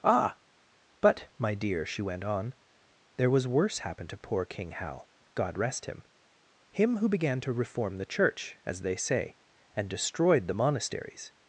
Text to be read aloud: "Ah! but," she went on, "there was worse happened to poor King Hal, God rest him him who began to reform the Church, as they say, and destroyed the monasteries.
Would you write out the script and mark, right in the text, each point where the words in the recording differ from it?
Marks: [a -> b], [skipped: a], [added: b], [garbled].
"Ah! but," [added: my dear] she went on, "there was worse happened to poor King Hal, God rest him him who began to reform the Church, as they say, and destroyed the monasteries.